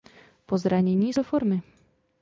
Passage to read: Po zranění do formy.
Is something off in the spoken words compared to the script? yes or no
no